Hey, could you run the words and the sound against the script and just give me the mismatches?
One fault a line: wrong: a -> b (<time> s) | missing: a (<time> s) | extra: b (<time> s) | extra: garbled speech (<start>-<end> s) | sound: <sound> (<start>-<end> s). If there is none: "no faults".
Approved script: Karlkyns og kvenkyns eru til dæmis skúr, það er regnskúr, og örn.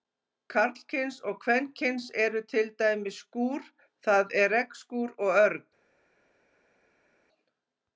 no faults